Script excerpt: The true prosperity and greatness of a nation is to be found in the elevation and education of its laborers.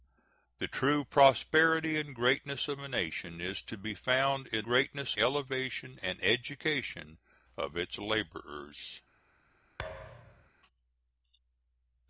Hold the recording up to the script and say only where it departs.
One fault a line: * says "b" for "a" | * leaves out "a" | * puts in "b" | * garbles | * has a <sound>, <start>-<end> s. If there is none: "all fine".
* says "greatness" for "the"
* has a thud, 9.8-10.5 s